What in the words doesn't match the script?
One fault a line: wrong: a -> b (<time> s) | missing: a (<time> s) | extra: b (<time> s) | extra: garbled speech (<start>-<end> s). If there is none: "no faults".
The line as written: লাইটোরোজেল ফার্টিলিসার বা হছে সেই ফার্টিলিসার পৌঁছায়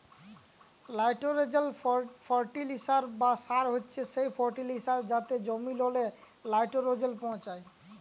extra: সার (3.5 s)
extra: যাতে জমিললে লাইটোরোজেল (5.1 s)